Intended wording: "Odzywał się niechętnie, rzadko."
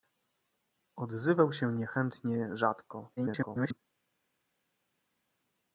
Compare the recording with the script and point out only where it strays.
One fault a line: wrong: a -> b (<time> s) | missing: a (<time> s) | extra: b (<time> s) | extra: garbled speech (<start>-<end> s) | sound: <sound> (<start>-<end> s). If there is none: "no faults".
extra: garbled speech (3.2-3.8 s)